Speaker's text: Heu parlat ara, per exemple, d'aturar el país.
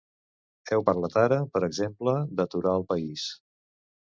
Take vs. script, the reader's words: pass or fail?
pass